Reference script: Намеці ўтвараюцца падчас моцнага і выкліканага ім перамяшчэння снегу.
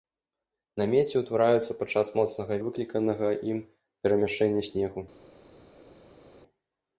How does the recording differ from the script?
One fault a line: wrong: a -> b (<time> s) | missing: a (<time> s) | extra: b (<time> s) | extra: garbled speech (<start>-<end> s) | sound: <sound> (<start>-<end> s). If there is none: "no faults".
no faults